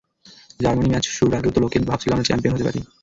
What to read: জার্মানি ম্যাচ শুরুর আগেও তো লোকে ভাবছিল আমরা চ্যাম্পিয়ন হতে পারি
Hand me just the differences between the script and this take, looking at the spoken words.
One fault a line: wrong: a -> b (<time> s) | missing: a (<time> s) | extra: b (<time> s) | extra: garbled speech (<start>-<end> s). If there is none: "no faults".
no faults